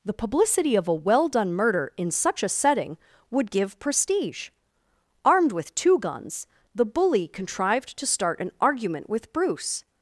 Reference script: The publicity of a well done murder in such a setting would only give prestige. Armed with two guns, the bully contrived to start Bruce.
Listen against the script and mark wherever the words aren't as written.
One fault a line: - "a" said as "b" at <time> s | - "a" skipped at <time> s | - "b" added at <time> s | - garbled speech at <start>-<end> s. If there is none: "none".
- "only" skipped at 3.5 s
- "an argument with" added at 8.4 s